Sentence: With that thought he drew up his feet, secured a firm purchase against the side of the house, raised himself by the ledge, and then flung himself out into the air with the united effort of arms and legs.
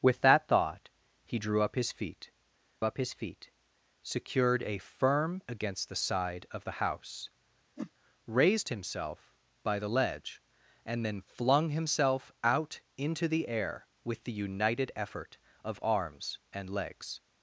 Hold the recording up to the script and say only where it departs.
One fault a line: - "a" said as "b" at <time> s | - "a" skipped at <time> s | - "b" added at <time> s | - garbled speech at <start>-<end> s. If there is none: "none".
- "up his feet" added at 2.8 s
- "purchase" skipped at 5.4 s